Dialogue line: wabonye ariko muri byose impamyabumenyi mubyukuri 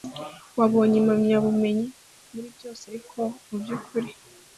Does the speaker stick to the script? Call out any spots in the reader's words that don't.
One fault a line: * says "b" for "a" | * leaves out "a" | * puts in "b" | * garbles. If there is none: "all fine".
* says "impamyabumenyi" for "ariko"
* says "ariko" for "impamyabumenyi"